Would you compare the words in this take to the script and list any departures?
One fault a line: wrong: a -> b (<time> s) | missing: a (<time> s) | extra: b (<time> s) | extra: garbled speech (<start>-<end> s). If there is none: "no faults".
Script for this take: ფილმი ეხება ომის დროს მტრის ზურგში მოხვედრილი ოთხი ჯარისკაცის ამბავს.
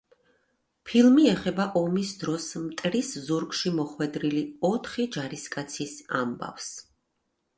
no faults